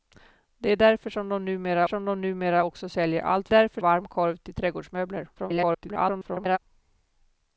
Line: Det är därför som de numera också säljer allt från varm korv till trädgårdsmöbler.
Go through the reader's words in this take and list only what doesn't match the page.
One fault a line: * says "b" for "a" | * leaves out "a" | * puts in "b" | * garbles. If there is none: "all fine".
* puts in "som de numera"
* says "därför" for "från"
* garbles